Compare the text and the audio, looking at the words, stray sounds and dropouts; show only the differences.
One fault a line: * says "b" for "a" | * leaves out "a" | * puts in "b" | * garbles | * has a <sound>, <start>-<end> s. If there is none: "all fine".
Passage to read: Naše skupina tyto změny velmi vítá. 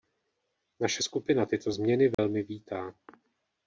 * has a dropout, 2.1-2.2 s